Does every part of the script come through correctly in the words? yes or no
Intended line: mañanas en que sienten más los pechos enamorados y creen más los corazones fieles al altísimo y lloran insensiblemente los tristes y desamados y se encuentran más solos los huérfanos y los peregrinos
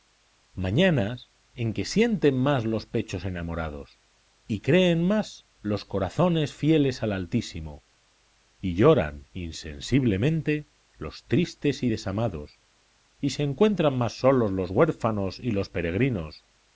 yes